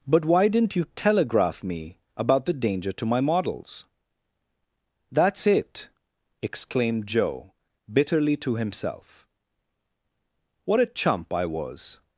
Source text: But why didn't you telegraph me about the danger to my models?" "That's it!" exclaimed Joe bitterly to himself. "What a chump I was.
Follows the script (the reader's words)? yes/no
yes